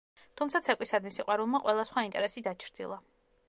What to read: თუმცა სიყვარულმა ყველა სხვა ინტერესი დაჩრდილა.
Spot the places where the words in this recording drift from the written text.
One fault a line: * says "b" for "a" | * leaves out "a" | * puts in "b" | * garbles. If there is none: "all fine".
* puts in "ცეკვისადმი"